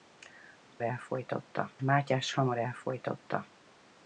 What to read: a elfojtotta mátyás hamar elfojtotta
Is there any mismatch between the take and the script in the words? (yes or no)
no